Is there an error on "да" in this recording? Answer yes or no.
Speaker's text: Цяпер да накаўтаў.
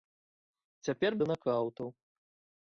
no